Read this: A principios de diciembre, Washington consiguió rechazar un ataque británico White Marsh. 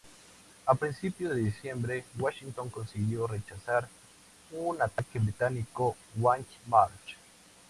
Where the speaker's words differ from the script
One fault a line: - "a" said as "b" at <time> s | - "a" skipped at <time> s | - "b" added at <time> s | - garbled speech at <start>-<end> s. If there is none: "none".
none